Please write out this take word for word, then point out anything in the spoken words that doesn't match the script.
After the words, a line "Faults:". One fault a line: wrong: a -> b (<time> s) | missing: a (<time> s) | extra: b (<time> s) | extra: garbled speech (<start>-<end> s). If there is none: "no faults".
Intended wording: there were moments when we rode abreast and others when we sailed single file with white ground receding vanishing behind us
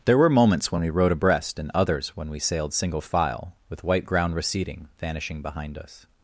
there were moments when we rode abreast and others when we sailed single file with white ground receding vanishing behind us
Faults:
no faults